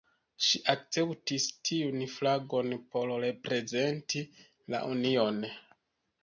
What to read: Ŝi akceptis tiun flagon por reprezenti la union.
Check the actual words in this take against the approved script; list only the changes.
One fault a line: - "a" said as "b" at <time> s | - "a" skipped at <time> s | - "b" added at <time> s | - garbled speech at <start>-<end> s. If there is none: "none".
none